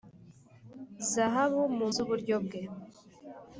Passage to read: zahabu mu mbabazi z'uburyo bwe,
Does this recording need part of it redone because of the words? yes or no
yes